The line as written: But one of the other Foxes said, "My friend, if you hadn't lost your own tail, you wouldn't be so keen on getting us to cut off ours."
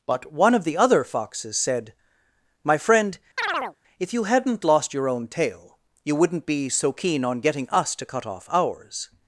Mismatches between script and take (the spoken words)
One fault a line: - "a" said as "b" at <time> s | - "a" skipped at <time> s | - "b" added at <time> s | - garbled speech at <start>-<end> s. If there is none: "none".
none